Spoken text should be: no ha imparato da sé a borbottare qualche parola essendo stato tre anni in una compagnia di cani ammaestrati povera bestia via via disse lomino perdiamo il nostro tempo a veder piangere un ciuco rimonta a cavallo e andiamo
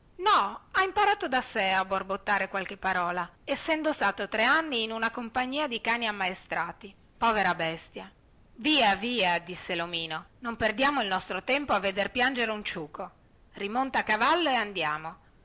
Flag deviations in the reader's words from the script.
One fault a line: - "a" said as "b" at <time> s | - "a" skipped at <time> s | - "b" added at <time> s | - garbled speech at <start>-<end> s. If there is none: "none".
- "non" added at 10.4 s